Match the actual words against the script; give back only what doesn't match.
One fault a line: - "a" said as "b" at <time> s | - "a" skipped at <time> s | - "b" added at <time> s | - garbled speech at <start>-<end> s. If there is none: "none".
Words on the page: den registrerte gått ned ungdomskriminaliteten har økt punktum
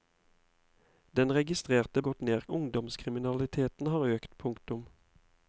none